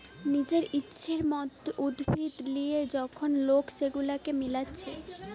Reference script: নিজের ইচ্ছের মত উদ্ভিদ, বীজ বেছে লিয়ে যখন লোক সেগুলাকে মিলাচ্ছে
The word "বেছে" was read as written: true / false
false